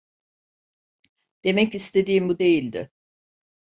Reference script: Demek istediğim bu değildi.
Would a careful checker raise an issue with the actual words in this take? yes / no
no